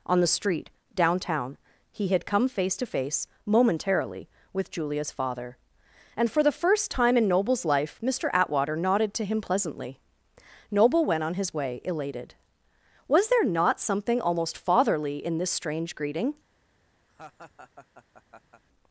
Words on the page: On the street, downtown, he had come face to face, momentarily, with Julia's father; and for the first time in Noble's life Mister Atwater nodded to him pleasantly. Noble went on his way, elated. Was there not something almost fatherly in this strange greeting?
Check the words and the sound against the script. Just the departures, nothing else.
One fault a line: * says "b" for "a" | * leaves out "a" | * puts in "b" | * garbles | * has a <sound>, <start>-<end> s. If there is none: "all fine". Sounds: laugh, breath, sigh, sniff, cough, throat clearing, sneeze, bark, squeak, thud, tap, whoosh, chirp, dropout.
* has a laugh, 17.1-18.6 s